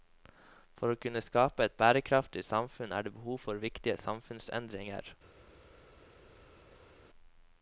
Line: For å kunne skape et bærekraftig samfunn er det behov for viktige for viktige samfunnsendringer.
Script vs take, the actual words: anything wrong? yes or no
yes